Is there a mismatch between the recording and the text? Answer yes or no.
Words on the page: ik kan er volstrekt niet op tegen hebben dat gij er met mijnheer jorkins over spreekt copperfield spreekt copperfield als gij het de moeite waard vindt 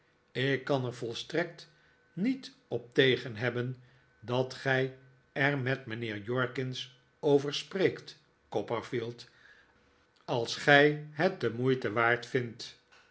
yes